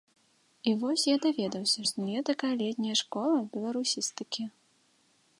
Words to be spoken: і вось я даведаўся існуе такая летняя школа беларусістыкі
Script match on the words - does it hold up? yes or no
yes